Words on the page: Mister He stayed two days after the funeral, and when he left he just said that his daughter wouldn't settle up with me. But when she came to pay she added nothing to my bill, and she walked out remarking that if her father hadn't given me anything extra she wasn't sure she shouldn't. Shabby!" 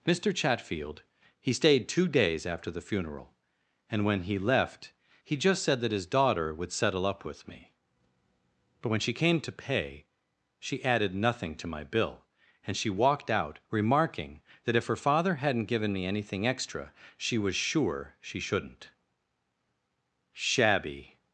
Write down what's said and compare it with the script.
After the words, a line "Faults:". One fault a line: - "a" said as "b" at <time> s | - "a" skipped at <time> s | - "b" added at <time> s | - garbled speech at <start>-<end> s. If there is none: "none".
Mister Chatfield, he stayed two days after the funeral, and when he left he just said that his daughter would settle up with me. But when she came to pay she added nothing to my bill, and she walked out remarking that if her father hadn't given me anything extra she was sure she shouldn't. Shabby!"
Faults:
- "Chatfield" added at 0.3 s
- "wouldn't" said as "would" at 6.5 s
- "wasn't" said as "was" at 17.4 s